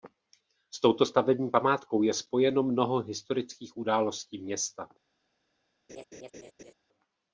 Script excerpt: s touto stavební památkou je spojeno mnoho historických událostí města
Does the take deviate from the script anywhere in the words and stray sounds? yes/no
yes